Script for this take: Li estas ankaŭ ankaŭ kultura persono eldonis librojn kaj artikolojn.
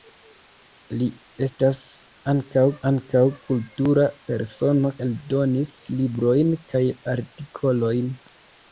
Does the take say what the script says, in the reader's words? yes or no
yes